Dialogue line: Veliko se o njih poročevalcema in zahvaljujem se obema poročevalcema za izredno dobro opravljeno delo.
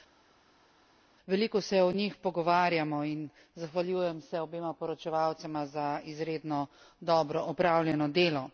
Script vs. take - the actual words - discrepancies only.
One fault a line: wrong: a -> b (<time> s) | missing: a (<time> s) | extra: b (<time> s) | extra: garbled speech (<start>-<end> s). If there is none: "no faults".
wrong: poročevalcema -> pogovarjamo (2.2 s)